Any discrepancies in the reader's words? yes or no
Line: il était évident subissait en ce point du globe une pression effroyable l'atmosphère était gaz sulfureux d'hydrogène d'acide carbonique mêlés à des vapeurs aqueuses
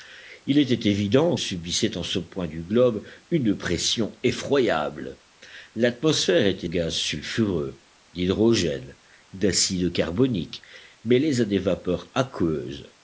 no